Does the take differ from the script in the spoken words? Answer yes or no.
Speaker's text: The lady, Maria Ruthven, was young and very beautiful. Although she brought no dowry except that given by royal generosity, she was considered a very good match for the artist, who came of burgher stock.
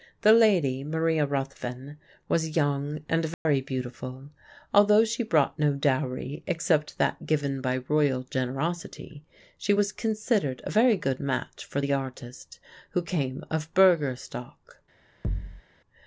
no